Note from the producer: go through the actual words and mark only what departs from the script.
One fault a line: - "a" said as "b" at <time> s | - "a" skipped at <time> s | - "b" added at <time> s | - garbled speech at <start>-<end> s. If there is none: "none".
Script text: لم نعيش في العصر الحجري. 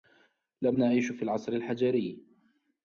none